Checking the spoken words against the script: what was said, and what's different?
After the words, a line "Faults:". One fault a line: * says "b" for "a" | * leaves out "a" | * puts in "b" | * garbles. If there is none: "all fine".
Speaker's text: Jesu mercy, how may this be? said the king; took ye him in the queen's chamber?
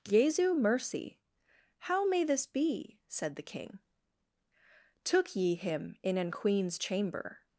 Jesu mercy, how may this be? said the king; took ye him in an queen's chamber?
Faults:
* says "an" for "the"